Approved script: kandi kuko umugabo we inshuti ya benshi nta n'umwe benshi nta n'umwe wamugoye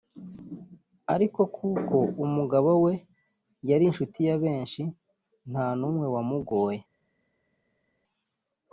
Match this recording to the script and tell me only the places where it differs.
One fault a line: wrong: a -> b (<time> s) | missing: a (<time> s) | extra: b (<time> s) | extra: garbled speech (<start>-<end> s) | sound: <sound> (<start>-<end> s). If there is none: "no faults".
wrong: kandi -> ariko (1.1 s)
extra: yari (3.7 s)
missing: benshi nta n'umwe (6.1 s)